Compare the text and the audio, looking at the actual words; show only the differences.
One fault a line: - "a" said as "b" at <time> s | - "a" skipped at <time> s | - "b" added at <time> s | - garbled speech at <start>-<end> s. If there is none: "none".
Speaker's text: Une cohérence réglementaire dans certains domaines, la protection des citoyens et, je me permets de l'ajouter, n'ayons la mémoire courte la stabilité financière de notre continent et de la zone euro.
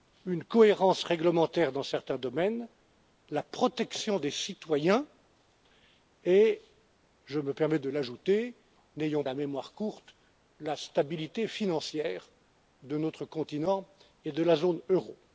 none